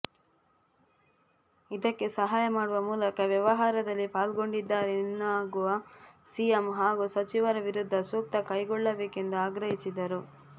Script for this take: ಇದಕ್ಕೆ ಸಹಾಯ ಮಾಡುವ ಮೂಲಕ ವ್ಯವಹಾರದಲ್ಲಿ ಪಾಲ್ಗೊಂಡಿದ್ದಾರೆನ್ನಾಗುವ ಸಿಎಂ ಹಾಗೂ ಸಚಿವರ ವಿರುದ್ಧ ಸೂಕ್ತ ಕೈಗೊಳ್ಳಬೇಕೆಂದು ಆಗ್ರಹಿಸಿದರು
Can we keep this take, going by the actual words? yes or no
yes